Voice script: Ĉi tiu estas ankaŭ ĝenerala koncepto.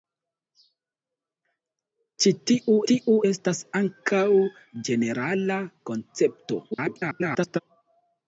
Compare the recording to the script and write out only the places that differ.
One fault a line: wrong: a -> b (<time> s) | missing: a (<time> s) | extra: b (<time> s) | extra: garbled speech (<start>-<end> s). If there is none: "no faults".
extra: tiu (2.9 s)
extra: garbled speech (6.7-7.6 s)